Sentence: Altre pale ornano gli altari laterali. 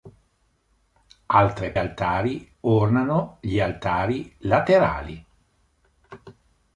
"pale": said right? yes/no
no